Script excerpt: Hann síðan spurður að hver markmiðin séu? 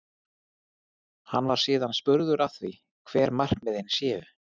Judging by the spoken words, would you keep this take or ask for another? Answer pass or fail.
fail